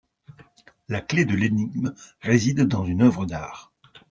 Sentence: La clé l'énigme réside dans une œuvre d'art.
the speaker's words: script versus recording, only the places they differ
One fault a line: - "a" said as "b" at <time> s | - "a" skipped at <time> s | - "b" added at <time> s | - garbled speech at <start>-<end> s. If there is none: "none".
- "de" added at 1.2 s